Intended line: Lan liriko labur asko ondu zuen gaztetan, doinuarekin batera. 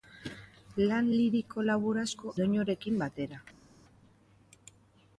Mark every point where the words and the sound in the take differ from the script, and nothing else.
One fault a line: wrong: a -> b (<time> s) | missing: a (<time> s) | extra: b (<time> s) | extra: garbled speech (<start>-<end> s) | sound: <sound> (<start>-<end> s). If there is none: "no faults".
missing: ondu zuen gaztetan (2.3 s)